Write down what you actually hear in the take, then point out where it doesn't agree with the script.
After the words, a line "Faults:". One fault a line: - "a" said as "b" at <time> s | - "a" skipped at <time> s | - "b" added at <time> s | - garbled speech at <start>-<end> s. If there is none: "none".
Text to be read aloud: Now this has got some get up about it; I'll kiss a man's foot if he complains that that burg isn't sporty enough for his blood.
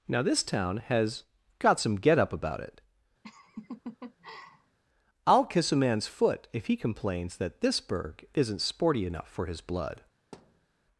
Now this town has got some get up about it; I'll kiss a man's foot if he complains that this burg isn't sporty enough for his blood.
Faults:
- "town" added at 0.4 s
- "that" said as "this" at 7.6 s